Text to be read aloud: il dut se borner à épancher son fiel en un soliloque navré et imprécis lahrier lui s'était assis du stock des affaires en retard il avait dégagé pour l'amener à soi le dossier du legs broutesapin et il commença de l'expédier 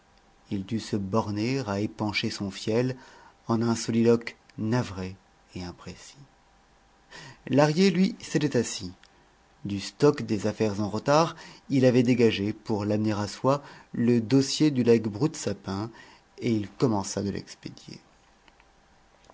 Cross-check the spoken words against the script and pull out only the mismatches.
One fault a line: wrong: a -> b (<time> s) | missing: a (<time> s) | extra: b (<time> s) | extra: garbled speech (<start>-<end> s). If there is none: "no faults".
no faults